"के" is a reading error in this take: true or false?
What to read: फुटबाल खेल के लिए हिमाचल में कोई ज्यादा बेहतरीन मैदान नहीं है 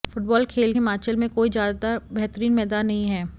true